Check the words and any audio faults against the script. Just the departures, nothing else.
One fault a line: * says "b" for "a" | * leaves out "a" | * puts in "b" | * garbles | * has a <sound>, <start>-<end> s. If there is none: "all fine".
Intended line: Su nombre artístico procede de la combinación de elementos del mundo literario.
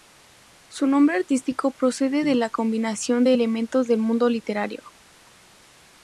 all fine